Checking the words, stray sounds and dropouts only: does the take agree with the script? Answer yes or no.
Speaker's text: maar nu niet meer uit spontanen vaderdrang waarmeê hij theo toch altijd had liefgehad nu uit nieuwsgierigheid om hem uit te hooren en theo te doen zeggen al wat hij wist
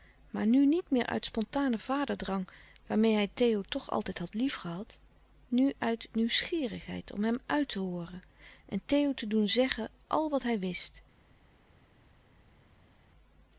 yes